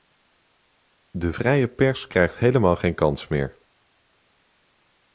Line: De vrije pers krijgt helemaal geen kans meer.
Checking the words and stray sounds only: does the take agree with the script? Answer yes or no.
yes